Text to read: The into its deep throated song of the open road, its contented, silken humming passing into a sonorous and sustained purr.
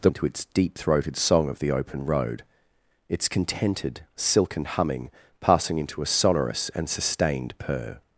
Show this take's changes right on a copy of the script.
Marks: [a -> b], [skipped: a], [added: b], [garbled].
The into its deep throated song of the open road, its contented, silken humming passing into a sonorous and sustained purr.